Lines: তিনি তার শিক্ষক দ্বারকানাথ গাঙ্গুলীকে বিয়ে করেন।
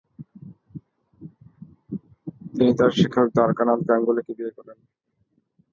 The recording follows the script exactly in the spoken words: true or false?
true